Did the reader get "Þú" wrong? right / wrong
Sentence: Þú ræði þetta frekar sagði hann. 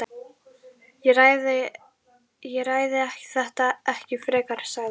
wrong